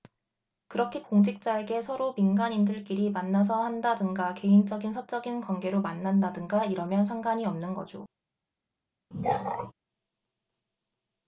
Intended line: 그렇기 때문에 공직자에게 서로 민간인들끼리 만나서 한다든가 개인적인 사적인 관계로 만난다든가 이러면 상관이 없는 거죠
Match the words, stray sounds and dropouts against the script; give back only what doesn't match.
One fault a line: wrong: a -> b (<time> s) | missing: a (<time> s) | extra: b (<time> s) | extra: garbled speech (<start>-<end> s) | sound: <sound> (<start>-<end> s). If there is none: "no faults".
missing: 때문에 (1.0 s)
sound: throat clearing (9.1-9.7 s)